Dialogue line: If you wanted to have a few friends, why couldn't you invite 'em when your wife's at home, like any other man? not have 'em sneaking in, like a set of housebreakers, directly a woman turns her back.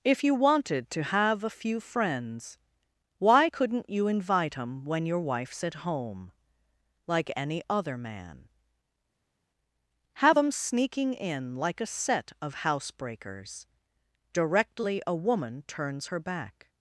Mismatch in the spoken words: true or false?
true